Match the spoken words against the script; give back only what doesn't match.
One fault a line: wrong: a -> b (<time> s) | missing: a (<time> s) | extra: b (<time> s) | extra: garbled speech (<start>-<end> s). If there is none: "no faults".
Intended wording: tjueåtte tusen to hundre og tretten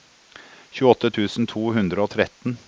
no faults